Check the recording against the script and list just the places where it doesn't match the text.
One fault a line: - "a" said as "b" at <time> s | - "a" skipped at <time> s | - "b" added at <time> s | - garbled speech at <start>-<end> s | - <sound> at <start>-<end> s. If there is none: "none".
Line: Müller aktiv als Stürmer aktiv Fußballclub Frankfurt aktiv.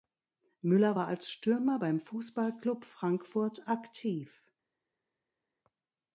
- "aktiv" said as "war" at 0.9 s
- "aktiv" said as "beim" at 1.8 s